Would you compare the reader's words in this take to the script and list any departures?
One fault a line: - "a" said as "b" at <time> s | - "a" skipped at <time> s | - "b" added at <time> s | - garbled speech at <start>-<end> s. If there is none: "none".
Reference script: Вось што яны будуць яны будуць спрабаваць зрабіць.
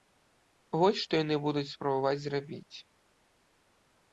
- "яны будуць" skipped at 1.6 s